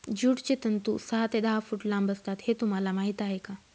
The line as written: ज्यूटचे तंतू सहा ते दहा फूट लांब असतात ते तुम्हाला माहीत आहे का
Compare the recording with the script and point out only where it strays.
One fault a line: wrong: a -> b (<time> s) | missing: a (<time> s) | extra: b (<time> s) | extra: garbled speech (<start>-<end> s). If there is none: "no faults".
wrong: ते -> हे (2.4 s)